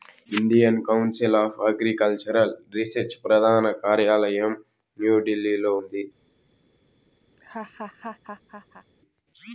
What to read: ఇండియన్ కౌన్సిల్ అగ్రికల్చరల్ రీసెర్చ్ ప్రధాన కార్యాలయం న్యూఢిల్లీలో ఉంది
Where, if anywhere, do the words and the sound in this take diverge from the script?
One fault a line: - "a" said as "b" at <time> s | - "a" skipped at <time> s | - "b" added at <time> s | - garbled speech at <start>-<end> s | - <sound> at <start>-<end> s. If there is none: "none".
- "ఆఫ్" added at 1.4 s
- laugh at 7.3-8.9 s